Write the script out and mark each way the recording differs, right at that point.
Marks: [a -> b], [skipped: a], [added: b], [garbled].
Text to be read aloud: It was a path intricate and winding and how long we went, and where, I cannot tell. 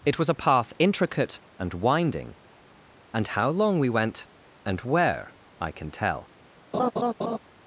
It was a path intricate and winding and how long we went, and where, I [cannot -> can] tell.